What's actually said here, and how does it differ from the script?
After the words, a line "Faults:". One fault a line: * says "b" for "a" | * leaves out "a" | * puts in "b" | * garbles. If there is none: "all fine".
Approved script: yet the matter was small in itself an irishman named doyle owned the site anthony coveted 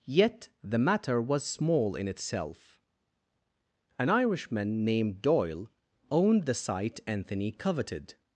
yet the matter was small in itself an irishman named doyle owned the site anthony coveted
Faults:
all fine